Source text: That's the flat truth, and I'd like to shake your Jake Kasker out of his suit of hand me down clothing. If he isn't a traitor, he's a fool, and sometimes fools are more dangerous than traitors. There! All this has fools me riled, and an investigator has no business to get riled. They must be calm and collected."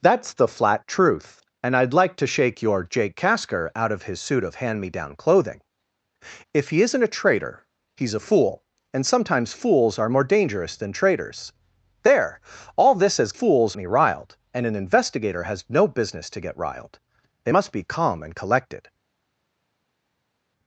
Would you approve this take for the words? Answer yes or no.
yes